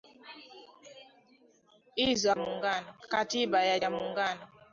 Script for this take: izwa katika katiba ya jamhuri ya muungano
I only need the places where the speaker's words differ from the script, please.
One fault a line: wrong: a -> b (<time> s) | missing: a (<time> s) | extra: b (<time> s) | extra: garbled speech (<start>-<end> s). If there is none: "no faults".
wrong: katika -> muungano (2.4 s)
missing: jamhuri (3.8 s)